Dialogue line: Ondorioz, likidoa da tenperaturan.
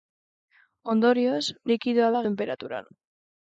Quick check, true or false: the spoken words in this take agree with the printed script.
true